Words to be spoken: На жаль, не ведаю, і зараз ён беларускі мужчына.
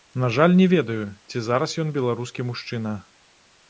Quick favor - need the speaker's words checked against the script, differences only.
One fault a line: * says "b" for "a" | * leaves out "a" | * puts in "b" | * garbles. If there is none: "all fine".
* says "ці" for "і"